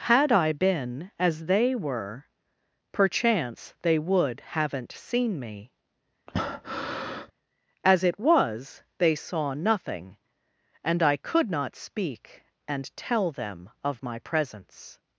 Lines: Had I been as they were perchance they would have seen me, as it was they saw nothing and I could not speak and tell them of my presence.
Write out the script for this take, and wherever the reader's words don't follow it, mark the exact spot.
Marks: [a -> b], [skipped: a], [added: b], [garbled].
Had I been as they were perchance they would [have -> haven't] seen me, as it was they saw nothing and I could not speak and tell them of my presence.